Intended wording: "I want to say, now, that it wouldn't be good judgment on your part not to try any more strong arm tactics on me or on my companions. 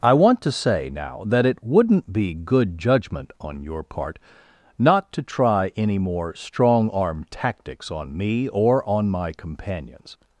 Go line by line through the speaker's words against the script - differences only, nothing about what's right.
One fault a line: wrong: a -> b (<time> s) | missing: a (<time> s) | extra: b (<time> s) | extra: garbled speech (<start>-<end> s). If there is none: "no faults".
no faults